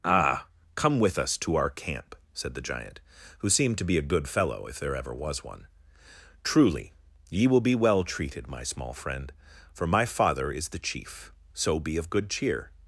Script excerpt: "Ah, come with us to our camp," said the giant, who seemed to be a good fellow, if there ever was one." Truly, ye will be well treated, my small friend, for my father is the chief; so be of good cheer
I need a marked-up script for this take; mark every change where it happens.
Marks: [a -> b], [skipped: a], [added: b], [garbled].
"Ah, come with us to our camp," said the giant, who seemed to be a good fellow, if there ever was one." Truly, ye will be well treated, my small friend, for my father is the chief; so be of good cheer